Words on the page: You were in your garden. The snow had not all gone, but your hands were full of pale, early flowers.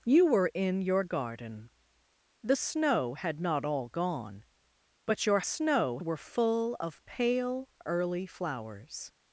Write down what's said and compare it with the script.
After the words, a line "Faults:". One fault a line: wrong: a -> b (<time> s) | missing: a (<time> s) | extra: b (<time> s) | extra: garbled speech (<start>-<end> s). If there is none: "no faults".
You were in your garden. The snow had not all gone, but your snow were full of pale, early flowers.
Faults:
wrong: hands -> snow (5.4 s)